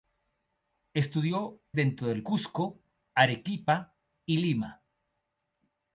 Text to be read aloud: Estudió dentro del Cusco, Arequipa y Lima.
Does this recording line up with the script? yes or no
yes